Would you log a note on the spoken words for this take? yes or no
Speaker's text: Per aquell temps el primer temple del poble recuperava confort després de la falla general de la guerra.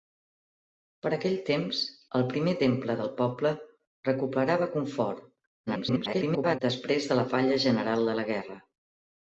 yes